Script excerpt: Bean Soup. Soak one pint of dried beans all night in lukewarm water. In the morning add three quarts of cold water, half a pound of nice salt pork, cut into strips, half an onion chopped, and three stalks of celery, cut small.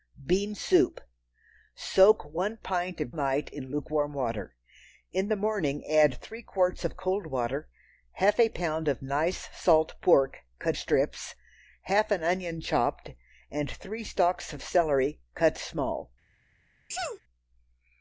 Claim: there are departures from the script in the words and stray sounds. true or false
true